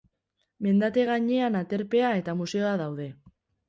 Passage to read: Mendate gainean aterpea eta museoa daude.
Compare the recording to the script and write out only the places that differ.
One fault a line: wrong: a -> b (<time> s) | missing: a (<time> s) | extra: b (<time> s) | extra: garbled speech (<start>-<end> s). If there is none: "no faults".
no faults